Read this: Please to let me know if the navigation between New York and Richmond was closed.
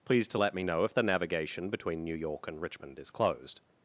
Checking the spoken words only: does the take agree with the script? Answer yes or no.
no